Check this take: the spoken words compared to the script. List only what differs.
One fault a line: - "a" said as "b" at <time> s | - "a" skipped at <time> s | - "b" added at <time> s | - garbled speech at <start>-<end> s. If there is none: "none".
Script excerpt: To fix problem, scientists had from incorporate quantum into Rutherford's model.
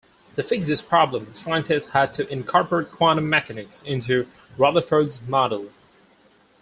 - "this" added at 0.7 s
- "from" said as "to" at 2.1 s
- "mechanics" added at 3.3 s